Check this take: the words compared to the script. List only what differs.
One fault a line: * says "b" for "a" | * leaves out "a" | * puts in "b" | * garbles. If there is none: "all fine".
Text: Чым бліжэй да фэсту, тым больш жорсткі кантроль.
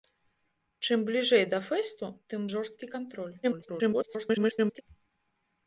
* leaves out "больш"
* garbles